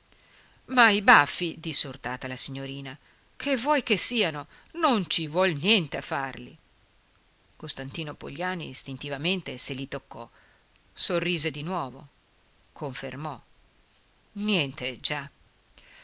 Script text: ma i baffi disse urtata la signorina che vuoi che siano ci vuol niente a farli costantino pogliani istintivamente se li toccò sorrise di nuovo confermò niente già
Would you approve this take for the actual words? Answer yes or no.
no